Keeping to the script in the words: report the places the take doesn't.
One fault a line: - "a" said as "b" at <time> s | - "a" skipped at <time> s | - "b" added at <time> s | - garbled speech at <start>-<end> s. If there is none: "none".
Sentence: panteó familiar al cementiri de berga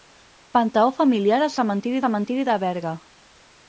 - "cementiri" added at 2.0 s